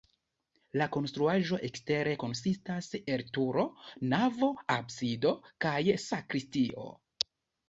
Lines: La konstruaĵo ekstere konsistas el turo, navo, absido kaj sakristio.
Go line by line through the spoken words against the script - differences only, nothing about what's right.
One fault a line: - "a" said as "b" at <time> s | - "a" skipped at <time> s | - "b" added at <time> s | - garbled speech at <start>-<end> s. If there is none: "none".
none